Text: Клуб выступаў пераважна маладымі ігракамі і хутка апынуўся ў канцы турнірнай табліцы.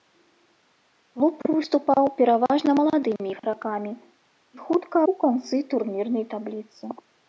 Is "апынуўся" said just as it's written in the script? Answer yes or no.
no